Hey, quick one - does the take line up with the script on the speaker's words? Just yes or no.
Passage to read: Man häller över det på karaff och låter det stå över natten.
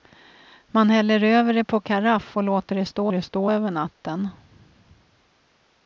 no